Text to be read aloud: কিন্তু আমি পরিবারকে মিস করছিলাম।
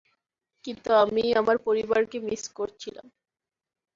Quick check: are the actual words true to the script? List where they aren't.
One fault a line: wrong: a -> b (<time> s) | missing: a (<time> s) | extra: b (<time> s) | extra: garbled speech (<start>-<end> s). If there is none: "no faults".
extra: আমার (1.3 s)